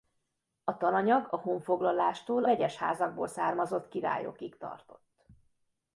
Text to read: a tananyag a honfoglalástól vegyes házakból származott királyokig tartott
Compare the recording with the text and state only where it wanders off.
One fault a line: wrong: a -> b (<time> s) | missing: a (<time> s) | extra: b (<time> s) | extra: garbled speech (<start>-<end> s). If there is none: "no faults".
no faults